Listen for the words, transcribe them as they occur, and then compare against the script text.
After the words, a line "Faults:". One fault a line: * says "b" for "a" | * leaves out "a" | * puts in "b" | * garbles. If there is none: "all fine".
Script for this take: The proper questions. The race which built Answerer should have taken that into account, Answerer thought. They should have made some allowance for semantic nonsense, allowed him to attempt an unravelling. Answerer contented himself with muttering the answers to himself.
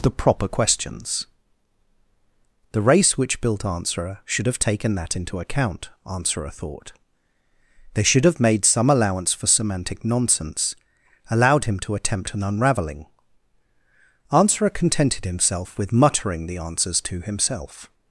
The proper questions. The race which built Answerer should have taken that into account, Answerer thought. They should have made some allowance for semantic nonsense, allowed him to attempt an unravelling. Answerer contented himself with muttering the answers to himself.
Faults:
all fine